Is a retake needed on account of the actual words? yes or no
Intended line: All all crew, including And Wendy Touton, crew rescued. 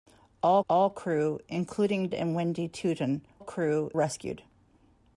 no